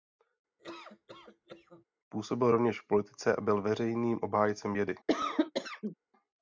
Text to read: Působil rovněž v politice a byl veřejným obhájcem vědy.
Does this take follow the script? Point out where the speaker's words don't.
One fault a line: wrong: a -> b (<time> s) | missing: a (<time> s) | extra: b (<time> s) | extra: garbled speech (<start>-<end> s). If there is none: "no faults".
no faults